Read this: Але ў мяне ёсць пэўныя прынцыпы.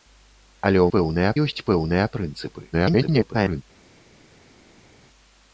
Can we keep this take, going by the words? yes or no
no